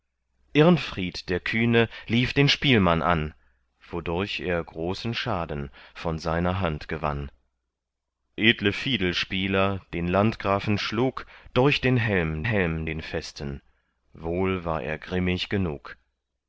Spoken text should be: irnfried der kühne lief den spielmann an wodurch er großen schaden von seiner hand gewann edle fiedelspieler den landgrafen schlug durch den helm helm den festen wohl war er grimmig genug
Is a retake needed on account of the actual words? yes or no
no